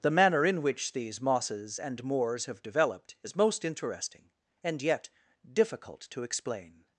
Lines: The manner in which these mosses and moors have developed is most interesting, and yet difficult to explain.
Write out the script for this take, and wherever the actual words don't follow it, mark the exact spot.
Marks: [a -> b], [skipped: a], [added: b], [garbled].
The manner in which these mosses and moors have developed is most interesting, and yet difficult to explain.